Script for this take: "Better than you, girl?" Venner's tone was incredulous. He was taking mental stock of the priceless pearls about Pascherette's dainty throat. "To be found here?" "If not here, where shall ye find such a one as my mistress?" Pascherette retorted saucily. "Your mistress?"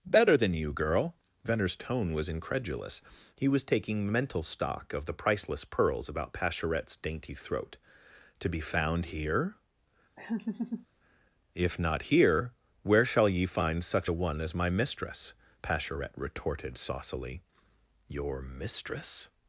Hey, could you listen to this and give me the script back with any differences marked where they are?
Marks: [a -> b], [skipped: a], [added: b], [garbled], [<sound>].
"Better than you, girl?" Venner's tone was incredulous. He was taking mental stock of the priceless pearls about Pascherette's dainty throat. "To be found here?" [laugh] "If not here, where shall ye find such a one as my mistress?" Pascherette retorted saucily. "Your mistress?"